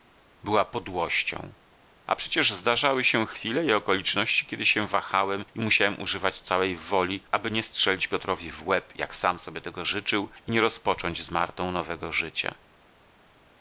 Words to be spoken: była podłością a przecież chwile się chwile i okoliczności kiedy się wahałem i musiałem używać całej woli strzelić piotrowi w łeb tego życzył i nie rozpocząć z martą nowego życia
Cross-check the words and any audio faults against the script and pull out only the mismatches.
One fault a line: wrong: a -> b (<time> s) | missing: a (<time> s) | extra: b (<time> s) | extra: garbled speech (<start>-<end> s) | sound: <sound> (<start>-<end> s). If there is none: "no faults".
wrong: chwile -> zdarzały (2.5 s)
extra: aby nie (7.3 s)
extra: jak sam sobie (9.0 s)